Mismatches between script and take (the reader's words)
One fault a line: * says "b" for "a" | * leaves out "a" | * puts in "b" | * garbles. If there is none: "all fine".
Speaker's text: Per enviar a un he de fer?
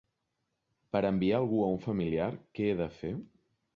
* puts in "algú"
* puts in "familiar què"